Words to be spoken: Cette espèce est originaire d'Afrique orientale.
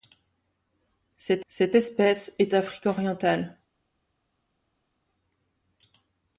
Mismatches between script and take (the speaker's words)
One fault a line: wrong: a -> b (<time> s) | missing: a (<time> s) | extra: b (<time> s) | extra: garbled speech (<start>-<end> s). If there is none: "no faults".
extra: cette (1.5 s)
missing: originaire (2.5 s)